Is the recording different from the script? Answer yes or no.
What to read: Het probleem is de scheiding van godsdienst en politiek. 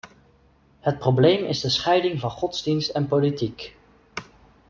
no